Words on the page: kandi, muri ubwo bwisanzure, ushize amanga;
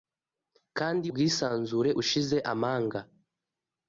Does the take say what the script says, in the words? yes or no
no